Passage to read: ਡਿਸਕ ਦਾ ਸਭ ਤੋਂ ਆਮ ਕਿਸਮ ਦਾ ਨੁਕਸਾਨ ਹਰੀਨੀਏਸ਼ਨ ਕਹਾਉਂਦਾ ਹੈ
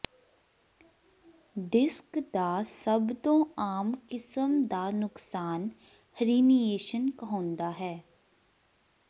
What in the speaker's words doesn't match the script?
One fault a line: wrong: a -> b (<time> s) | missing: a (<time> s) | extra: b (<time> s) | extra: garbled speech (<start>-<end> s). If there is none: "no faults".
no faults